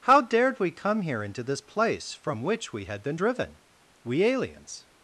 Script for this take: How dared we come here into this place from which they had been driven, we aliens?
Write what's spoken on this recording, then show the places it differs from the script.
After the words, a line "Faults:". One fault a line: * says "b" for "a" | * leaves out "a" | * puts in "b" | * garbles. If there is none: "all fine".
How dared we come here into this place from which we had been driven, we aliens?
Faults:
* says "we" for "they"